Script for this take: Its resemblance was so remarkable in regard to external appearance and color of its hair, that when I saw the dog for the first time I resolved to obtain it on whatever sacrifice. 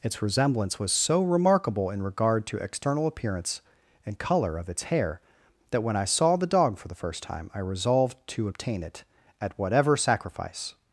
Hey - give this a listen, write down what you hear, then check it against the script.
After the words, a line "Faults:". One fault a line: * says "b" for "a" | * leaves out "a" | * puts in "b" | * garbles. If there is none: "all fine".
Its resemblance was so remarkable in regard to external appearance and color of its hair, that when I saw the dog for the first time I resolved to obtain it at whatever sacrifice.
Faults:
* says "at" for "on"